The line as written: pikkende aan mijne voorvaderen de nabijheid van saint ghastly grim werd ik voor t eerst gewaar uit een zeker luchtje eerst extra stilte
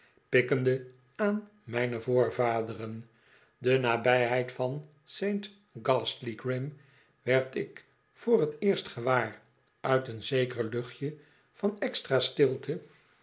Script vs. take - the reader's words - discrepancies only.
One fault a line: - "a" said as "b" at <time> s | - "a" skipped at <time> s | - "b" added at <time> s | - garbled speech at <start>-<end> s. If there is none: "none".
- "eerst" said as "van" at 11.5 s